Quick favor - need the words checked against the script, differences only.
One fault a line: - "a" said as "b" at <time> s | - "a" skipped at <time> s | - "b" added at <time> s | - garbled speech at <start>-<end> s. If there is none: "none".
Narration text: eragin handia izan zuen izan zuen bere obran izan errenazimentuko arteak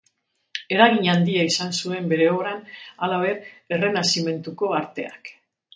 - "izan zuen" skipped at 2.1 s
- "izan" said as "halaber" at 3.1 s